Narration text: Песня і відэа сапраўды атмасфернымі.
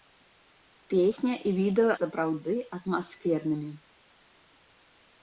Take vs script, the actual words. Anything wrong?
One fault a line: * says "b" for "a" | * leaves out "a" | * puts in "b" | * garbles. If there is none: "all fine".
all fine